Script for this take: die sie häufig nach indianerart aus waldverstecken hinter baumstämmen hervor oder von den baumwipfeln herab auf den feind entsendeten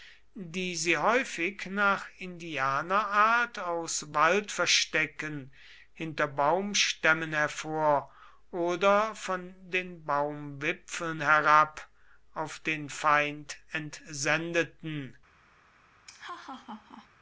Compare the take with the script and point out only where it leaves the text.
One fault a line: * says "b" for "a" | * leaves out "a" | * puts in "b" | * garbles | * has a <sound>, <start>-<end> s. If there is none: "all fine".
* has a laugh, 16.1-17.1 s